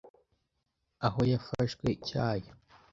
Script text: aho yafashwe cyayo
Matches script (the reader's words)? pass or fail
pass